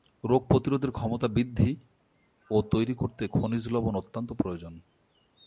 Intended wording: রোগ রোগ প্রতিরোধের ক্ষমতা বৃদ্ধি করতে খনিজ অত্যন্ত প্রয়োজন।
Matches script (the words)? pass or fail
fail